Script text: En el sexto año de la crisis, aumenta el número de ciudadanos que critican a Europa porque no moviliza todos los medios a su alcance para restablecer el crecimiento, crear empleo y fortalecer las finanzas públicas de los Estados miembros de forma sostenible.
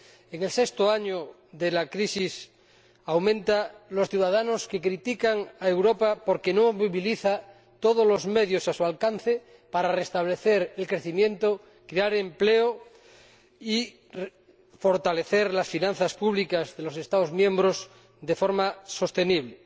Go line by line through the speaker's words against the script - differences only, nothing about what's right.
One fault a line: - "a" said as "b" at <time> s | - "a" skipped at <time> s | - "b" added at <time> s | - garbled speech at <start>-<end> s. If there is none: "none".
none